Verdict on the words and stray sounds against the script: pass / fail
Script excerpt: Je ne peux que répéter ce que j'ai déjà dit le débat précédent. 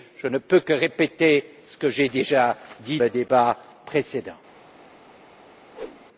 fail